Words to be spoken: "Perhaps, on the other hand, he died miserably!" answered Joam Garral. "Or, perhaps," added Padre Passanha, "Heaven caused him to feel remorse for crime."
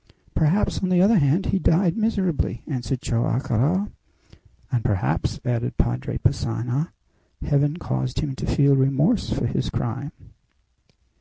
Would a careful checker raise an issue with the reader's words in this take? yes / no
yes